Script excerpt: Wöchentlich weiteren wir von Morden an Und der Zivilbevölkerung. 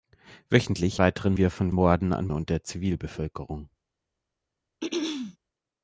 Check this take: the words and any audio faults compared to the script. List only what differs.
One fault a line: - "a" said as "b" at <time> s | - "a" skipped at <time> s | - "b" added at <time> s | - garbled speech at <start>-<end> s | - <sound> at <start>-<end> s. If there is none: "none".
- throat clearing at 4.8-5.4 s